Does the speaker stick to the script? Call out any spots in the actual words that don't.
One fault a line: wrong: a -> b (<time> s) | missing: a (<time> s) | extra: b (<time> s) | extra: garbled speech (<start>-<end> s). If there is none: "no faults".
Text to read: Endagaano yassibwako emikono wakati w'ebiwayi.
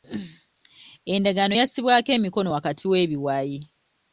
no faults